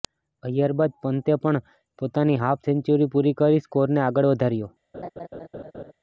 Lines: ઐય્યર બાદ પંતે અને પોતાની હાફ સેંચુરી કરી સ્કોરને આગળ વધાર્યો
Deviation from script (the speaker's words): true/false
true